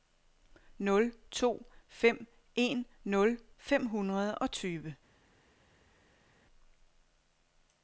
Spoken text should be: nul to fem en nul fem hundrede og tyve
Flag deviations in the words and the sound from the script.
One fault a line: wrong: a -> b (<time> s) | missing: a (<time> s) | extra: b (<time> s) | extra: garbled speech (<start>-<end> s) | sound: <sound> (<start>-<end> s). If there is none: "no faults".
no faults